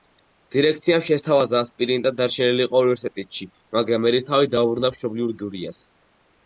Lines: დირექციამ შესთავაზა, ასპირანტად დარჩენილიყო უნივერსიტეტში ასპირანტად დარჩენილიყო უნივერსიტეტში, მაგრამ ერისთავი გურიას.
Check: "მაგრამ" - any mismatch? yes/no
yes